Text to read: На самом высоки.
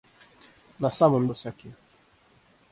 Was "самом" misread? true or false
false